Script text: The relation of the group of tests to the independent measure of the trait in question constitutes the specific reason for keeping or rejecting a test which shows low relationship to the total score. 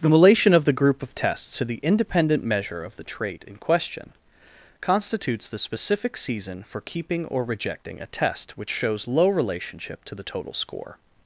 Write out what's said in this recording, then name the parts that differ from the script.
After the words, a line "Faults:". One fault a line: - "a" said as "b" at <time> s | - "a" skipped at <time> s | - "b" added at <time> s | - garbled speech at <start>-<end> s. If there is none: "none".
The relation of the group of tests to the independent measure of the trait in question constitutes the specific season for keeping or rejecting a test which shows low relationship to the total score.
Faults:
- "reason" said as "season" at 6.2 s